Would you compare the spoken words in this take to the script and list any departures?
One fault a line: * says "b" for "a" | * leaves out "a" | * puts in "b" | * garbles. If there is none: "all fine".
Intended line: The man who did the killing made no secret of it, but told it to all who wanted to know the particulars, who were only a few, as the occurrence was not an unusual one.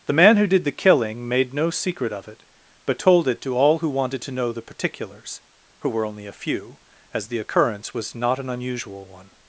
all fine